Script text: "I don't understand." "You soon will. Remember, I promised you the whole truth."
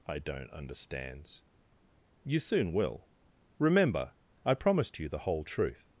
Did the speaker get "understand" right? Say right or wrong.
wrong